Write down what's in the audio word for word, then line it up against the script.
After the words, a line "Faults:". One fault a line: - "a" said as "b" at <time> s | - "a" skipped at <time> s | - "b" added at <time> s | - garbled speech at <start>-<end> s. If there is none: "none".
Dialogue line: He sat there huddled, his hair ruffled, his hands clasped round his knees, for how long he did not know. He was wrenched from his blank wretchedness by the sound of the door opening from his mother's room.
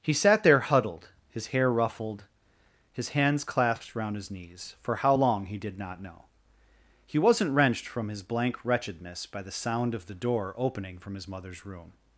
He sat there huddled, his hair ruffled, his hands clasped round his knees, for how long he did not know. He wasn't wrenched from his blank wretchedness by the sound of the door opening from his mother's room.
Faults:
- "was" said as "wasn't" at 7.2 s